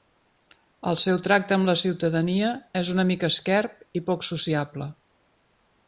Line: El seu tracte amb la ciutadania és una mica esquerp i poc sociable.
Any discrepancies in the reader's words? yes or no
no